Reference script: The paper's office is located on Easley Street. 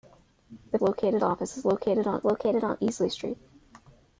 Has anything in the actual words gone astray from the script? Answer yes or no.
yes